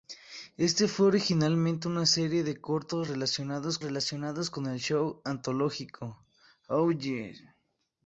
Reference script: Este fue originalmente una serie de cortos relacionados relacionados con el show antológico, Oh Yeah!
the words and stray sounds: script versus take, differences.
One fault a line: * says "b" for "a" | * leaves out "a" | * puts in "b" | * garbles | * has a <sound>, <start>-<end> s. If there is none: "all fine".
all fine